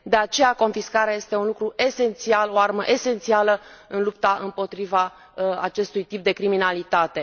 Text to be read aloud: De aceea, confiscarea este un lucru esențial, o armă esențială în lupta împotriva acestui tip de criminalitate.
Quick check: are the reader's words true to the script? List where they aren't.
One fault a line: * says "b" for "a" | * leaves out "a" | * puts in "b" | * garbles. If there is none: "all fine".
all fine